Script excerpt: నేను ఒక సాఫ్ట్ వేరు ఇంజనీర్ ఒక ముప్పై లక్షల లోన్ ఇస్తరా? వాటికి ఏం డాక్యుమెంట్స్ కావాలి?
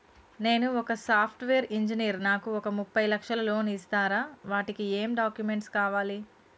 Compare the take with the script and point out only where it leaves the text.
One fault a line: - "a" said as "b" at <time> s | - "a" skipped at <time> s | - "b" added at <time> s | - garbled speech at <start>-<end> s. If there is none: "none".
- "నాకు" added at 2.2 s